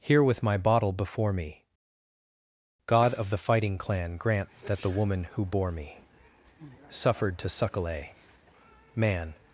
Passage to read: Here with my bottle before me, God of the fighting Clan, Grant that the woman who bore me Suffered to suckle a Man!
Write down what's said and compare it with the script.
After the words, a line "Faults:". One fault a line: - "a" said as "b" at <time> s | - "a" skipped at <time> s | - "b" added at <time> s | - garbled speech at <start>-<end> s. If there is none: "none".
Here with my bottle before me, God of the fighting Clan, Grant that the woman who bore me Suffered to suckle a Man!
Faults:
none